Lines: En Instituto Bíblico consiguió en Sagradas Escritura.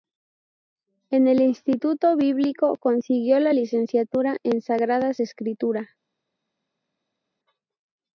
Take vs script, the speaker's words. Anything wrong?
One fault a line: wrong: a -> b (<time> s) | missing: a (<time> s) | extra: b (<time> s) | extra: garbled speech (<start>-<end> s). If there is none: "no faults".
extra: el (1.3 s)
extra: la licenciatura (3.4 s)